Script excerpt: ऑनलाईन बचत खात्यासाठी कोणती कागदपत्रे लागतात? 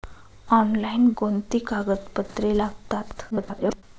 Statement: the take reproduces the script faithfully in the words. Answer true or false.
false